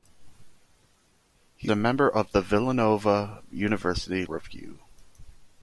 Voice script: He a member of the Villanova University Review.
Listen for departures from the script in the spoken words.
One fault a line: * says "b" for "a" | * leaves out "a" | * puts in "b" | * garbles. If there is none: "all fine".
all fine